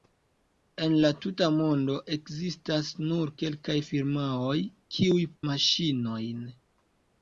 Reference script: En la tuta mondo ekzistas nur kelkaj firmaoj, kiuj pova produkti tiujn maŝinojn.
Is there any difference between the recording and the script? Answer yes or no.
yes